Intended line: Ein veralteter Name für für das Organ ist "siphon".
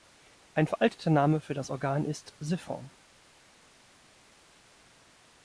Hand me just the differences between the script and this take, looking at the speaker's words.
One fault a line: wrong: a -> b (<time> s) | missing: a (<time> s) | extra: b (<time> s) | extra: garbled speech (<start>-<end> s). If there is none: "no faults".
missing: für (1.5 s)